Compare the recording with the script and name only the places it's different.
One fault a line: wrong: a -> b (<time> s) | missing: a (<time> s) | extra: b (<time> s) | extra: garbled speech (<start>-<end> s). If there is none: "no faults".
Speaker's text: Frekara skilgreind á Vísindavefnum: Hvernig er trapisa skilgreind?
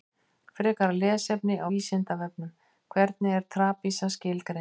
wrong: skilgreind -> lesefni (1.0 s)